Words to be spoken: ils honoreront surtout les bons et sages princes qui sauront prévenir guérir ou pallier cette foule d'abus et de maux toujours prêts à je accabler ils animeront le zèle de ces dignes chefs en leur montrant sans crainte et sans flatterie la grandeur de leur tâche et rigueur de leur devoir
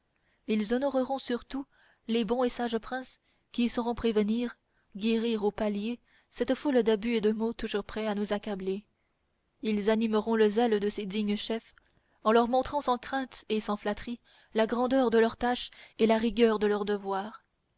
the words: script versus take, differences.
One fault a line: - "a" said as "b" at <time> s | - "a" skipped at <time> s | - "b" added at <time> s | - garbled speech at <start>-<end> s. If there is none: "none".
- "je" said as "nous" at 8.2 s
- "la" added at 16.1 s